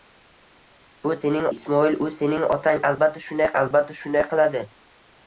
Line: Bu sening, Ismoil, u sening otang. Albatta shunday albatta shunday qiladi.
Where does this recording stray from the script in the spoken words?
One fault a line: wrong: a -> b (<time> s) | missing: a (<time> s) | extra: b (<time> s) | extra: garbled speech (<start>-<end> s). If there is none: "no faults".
no faults